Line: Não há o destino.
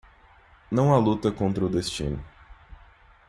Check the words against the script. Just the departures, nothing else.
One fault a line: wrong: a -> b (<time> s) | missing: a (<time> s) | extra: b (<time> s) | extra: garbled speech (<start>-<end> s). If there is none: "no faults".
extra: luta contra (1.0 s)